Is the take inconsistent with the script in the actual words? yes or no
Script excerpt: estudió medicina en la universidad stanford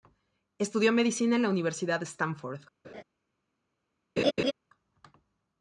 no